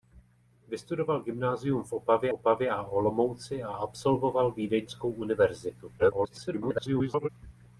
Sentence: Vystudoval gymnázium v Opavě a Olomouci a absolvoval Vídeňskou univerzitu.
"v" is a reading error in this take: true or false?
false